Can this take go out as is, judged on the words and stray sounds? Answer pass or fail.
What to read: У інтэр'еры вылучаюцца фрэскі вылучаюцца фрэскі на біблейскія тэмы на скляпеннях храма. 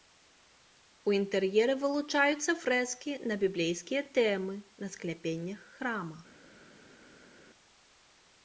fail